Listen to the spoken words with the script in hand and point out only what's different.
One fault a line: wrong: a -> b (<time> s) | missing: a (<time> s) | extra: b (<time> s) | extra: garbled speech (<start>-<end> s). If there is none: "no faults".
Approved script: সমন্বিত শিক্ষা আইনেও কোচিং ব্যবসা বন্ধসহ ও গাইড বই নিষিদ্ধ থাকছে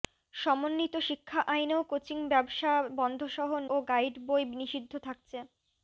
no faults